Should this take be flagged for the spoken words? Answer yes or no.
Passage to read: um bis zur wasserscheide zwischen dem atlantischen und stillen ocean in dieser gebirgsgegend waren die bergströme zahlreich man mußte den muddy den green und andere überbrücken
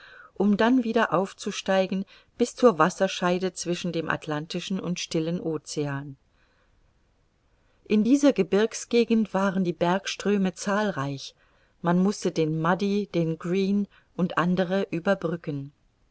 yes